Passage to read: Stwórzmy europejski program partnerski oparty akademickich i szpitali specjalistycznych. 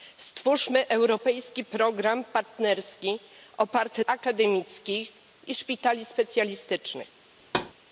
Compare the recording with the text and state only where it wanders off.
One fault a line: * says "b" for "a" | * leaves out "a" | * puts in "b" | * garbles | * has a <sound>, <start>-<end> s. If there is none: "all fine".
* has a thud, 7.4-7.7 s